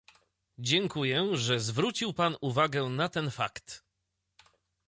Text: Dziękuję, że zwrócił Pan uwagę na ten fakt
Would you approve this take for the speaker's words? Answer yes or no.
yes